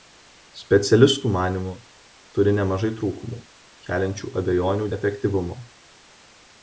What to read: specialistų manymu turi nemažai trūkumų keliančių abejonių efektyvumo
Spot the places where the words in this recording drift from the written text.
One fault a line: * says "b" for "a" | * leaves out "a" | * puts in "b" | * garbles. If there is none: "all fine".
all fine